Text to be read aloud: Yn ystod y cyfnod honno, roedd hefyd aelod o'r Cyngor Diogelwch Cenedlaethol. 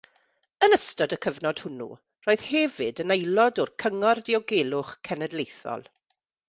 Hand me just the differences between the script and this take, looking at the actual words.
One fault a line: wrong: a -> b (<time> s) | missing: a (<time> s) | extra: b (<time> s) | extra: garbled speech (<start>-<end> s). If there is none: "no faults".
wrong: honno -> hwnnw (1.6 s)
extra: yn (3.0 s)